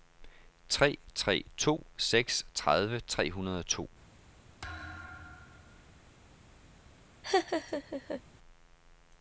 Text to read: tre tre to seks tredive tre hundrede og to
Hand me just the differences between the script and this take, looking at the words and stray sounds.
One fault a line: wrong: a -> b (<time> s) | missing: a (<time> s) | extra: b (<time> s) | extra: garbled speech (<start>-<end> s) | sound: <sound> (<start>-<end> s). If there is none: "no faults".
sound: thud (4.6-6.1 s)
sound: laugh (7.2-8.2 s)